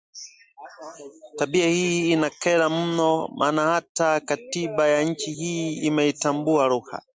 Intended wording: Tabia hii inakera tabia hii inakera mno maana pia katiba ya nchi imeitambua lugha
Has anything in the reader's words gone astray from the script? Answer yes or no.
yes